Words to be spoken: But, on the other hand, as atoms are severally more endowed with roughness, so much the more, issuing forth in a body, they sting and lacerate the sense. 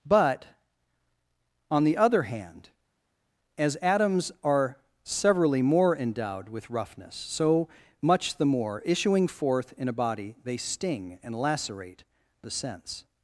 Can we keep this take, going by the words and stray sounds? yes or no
yes